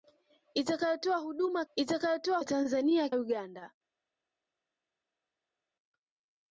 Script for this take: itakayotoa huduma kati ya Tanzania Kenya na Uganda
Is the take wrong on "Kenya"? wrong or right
wrong